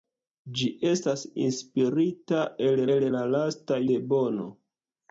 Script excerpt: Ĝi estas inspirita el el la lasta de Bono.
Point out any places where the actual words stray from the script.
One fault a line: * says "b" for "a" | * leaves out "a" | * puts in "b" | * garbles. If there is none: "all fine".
all fine